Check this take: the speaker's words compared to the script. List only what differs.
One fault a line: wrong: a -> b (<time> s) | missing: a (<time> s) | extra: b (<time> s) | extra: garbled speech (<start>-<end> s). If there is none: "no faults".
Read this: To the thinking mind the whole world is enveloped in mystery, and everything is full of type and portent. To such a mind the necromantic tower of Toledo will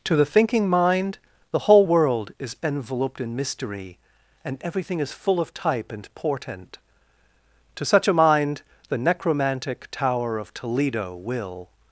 no faults